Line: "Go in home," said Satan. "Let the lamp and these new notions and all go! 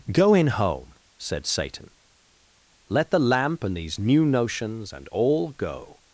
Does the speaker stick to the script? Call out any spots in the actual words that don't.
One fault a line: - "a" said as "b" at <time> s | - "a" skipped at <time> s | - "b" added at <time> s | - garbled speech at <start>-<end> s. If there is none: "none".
none